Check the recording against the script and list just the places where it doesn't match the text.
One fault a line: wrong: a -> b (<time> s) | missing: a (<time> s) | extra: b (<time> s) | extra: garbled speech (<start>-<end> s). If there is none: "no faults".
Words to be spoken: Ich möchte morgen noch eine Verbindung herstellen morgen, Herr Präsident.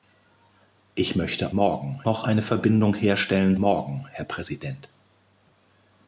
no faults